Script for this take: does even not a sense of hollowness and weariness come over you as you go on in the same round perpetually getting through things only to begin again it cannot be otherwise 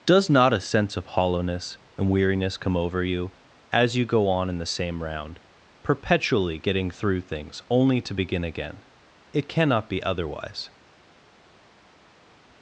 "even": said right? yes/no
no